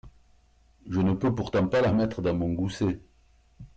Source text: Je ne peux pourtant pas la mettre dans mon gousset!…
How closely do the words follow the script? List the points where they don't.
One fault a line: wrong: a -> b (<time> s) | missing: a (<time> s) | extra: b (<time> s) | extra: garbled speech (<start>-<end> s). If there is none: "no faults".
no faults